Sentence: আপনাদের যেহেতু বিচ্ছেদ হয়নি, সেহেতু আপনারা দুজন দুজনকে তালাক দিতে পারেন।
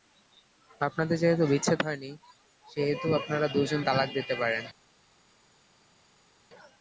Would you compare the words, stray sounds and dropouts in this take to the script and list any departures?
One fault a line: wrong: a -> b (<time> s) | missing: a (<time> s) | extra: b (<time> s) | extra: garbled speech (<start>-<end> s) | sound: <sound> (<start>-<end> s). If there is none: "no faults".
missing: দুজনকে (3.8 s)